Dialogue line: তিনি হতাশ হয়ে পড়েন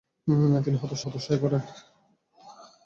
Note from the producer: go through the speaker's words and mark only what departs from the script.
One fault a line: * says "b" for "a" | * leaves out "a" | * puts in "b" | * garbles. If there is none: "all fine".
* puts in "হতাশ"